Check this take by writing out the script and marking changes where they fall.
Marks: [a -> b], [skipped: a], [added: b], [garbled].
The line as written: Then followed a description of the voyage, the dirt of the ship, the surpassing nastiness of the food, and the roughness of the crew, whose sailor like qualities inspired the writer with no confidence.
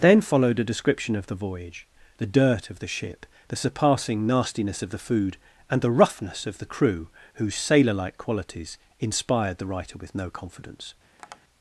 Then followed a description of the voyage, the dirt of the ship, the surpassing nastiness of the food, and the roughness of the crew, whose sailor like qualities inspired the writer with no confidence.